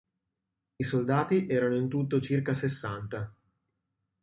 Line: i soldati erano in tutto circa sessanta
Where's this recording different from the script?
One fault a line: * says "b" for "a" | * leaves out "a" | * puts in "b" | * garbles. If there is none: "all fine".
all fine